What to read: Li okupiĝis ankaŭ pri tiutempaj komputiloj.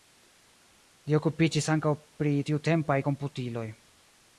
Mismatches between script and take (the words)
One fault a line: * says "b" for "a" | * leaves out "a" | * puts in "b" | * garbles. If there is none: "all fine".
all fine